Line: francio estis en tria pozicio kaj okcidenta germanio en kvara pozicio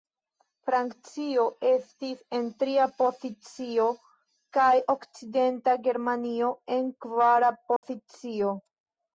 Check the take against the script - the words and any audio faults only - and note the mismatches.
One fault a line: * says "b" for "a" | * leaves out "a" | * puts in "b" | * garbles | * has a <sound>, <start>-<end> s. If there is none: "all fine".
* has a dropout, 7.8-7.8 s